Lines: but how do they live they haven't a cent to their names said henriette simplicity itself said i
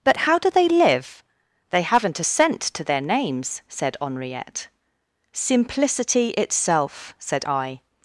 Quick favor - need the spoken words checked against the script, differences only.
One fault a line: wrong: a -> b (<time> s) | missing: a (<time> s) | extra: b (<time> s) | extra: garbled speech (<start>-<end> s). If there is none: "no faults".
no faults